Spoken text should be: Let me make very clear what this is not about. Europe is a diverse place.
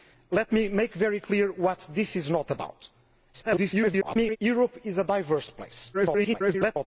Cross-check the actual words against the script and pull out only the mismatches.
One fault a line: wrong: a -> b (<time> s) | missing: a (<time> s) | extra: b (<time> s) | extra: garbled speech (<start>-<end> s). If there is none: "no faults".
extra: garbled speech (3.3-4.4 s)
extra: garbled speech (5.9-6.9 s)